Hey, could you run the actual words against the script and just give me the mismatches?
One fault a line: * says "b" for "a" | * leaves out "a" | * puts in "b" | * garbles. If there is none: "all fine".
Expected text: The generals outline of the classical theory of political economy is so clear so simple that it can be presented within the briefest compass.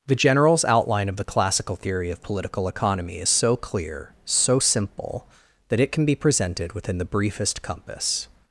all fine